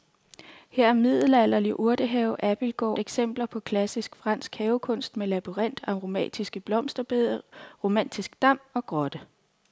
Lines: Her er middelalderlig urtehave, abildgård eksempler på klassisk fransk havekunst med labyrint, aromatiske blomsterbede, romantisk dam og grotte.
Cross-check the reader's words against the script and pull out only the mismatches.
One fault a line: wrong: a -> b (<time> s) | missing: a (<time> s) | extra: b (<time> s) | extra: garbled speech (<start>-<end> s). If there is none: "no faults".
no faults